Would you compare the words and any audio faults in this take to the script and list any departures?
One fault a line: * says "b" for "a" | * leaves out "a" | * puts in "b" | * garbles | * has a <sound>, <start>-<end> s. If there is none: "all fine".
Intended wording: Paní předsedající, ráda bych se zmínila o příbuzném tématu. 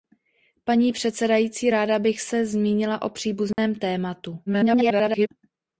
* has a dropout, 3.5-3.6 s
* garbles